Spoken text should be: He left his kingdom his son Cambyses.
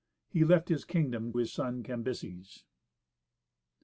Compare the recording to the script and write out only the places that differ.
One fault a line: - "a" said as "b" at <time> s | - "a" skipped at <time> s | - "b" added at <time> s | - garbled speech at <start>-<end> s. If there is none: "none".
none